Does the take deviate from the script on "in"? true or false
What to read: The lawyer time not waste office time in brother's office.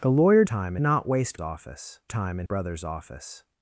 false